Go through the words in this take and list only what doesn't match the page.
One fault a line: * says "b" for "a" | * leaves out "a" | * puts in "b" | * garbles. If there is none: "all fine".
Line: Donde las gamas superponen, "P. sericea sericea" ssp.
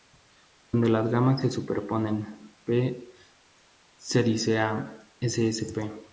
* puts in "se"
* leaves out "sericea"